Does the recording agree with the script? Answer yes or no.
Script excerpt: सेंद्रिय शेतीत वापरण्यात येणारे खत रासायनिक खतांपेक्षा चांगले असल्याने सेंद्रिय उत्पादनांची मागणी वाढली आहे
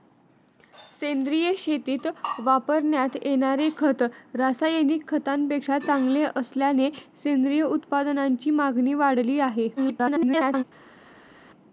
no